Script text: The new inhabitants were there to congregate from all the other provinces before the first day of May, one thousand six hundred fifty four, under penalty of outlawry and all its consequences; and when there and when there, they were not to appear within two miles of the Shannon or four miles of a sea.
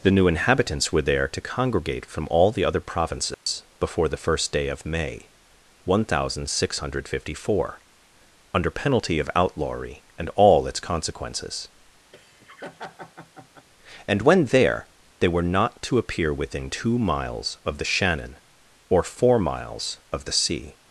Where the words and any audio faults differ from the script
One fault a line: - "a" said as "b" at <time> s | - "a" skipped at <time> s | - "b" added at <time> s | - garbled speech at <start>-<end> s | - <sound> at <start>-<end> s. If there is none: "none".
- dropout at 3.3-3.5 s
- laugh at 12.1-13.7 s
- "and when there" skipped at 14.9 s
- "a" said as "the" at 20.2 s